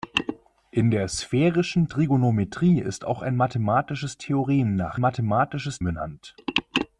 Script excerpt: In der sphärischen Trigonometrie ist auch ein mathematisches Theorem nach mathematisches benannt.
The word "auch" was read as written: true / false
true